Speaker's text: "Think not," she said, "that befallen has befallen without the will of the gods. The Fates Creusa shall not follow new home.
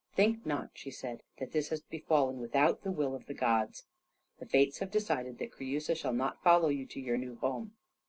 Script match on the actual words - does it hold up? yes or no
no